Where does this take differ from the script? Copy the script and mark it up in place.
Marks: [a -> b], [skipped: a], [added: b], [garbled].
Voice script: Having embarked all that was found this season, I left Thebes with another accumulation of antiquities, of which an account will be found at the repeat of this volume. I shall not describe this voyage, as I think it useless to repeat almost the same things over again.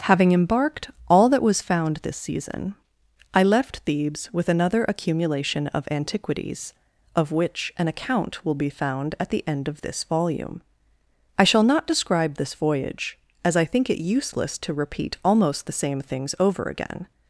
Having embarked all that was found this season, I left Thebes with another accumulation of antiquities, of which an account will be found at the [repeat -> end] of this volume. I shall not describe this voyage, as I think it useless to repeat almost the same things over again.